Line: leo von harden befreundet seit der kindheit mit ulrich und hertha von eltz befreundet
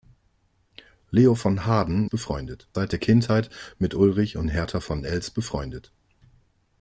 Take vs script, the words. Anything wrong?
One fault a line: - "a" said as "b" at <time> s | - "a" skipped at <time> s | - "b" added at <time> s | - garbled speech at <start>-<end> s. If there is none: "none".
none